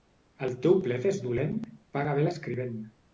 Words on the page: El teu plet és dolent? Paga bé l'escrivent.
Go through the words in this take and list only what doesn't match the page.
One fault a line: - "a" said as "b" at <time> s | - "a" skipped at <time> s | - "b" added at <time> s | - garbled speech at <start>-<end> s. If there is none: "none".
none